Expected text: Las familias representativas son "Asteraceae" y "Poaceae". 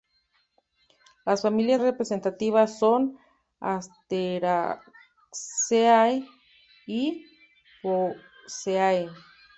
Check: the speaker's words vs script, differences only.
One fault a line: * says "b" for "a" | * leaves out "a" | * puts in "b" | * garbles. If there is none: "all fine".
all fine